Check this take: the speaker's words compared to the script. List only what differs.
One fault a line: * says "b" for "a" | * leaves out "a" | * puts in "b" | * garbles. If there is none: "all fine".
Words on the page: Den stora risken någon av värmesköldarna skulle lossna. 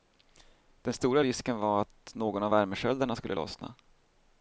* puts in "var att"